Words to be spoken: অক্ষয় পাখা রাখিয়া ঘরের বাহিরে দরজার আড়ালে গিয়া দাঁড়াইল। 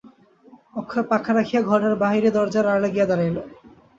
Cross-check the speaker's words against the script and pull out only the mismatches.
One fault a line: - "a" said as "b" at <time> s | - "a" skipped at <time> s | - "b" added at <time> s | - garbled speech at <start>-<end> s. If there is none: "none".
none